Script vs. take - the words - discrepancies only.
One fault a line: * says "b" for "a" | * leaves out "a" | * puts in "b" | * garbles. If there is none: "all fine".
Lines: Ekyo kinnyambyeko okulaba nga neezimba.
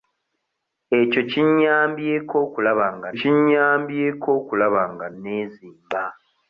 * puts in "kinnyambyeko okulaba nga"